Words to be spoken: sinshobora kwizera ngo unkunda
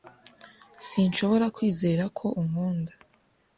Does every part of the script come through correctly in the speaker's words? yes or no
no